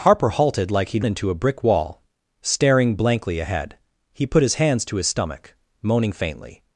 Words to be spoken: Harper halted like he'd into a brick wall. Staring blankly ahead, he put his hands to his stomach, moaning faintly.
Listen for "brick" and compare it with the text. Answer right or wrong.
right